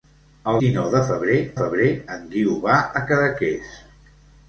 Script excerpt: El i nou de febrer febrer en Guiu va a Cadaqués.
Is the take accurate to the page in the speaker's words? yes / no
yes